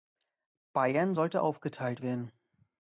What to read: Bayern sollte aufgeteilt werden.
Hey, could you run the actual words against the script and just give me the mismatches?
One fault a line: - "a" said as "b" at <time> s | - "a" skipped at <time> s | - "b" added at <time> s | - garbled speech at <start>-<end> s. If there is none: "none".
none